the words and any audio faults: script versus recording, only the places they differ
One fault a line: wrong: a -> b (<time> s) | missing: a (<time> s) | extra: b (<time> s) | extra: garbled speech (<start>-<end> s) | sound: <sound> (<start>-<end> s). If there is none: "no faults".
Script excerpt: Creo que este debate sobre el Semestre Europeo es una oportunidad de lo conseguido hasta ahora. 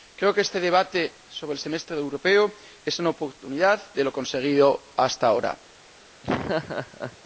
sound: laugh (6.2-7.2 s)